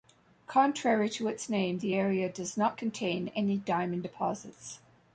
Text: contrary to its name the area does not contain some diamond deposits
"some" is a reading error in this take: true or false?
true